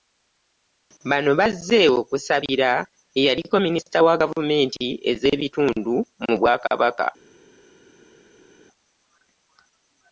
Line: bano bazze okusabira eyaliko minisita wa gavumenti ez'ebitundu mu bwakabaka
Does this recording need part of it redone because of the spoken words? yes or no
no